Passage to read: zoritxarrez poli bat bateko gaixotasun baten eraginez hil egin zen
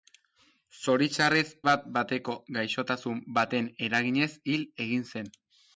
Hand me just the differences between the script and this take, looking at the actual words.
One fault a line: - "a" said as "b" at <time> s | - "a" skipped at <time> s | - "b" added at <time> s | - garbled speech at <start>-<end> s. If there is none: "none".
- "poli" skipped at 1.4 s